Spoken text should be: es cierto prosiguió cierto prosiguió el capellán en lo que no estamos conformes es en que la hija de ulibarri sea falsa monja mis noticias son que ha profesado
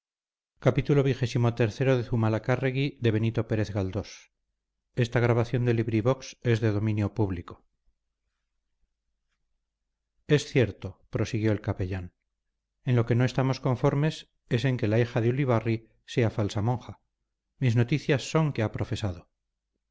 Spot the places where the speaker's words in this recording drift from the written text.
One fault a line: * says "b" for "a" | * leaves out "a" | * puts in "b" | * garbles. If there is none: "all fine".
* leaves out "cierto prosiguió"